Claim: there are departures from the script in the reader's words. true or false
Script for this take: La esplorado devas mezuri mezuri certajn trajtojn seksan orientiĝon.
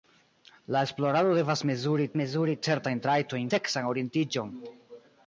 false